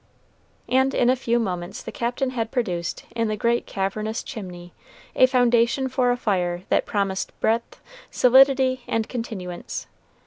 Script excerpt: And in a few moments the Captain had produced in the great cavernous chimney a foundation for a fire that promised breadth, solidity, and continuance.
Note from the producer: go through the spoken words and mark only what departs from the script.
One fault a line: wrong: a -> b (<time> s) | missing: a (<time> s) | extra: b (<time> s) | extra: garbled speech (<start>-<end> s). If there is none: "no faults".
no faults